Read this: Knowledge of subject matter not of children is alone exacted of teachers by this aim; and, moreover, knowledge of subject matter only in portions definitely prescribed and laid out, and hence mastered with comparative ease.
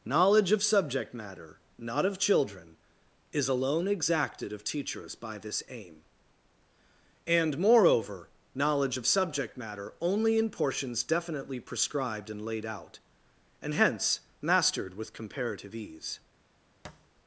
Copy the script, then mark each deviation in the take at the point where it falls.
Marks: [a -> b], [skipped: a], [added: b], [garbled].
Knowledge of subject matter not of children is alone exacted of teachers by this aim; and, moreover, knowledge of subject matter only in portions definitely prescribed and laid out, and hence mastered with comparative ease.